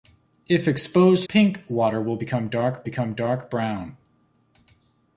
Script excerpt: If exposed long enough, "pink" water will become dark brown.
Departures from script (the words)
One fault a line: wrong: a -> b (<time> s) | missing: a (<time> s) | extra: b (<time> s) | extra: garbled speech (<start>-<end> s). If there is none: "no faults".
missing: long enough (1.3 s)
extra: become dark (2.8 s)